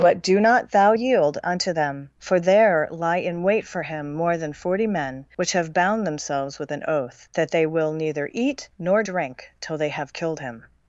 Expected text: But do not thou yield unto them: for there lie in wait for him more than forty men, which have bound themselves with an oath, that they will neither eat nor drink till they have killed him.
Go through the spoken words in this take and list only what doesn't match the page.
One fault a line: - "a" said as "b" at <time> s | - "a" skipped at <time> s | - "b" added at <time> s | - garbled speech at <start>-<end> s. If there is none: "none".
none